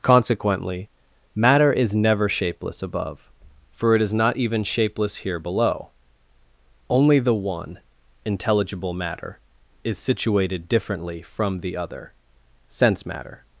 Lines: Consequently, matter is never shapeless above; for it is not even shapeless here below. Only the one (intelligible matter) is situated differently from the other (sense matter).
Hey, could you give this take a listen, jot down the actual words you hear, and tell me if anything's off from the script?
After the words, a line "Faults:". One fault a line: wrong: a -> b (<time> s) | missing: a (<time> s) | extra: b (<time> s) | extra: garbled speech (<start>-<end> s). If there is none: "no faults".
Consequently, matter is never shapeless above; for it is not even shapeless here below. Only the one (intelligible matter) is situated differently from the other (sense matter).
Faults:
no faults